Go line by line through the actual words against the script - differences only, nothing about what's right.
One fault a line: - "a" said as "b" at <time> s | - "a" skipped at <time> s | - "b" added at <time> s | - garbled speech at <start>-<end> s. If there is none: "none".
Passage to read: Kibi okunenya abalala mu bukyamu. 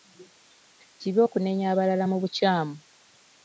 none